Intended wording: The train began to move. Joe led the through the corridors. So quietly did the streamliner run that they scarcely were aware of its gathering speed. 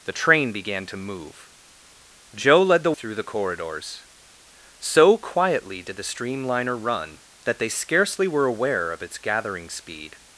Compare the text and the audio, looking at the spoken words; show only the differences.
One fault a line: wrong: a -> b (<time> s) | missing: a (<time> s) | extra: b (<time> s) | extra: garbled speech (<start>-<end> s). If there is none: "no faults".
no faults